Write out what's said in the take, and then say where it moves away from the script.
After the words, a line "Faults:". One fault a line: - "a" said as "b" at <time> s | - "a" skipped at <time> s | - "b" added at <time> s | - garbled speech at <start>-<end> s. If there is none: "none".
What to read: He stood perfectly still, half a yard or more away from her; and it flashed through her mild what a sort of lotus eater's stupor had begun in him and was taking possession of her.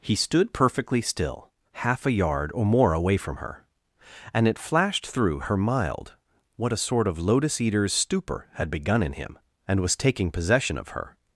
He stood perfectly still, half a yard or more away from her; and it flashed through her mild what a sort of lotus eater's stupor had begun in him and was taking possession of her.
Faults:
none